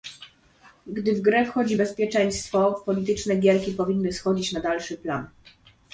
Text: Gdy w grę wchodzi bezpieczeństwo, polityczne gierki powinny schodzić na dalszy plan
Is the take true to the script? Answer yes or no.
yes